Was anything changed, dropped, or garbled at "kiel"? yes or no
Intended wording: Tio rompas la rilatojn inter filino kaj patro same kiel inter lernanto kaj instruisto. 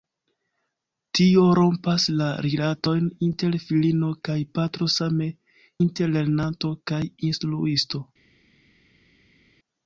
yes